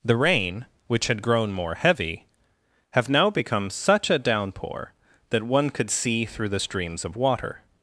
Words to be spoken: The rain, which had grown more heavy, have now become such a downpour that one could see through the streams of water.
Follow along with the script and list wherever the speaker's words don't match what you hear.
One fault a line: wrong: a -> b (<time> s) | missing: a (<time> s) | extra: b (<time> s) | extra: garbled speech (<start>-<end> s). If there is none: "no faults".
no faults